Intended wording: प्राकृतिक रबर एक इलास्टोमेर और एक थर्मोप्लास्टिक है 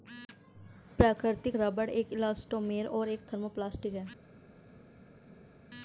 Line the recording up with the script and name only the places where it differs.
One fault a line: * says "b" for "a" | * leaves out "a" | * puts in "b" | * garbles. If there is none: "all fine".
all fine